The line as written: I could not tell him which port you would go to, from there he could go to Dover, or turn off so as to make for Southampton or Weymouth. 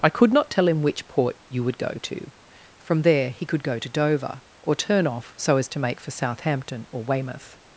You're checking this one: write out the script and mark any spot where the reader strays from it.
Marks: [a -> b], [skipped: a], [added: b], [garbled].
I could not tell him which port you would go to, from there he could go to Dover, or turn off so as to make for Southampton or Weymouth.